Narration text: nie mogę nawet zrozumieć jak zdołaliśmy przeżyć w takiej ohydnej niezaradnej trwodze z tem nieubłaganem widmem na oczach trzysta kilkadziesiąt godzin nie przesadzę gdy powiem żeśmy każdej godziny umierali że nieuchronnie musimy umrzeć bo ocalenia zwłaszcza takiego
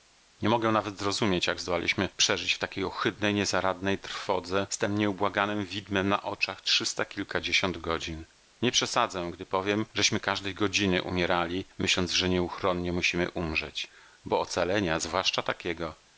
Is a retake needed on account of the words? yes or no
yes